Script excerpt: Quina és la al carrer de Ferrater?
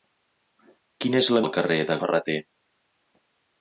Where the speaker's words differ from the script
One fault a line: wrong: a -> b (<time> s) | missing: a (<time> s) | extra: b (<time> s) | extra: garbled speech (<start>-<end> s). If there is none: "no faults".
no faults